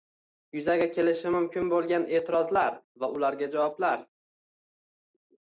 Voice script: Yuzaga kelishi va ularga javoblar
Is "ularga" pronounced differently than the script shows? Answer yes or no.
no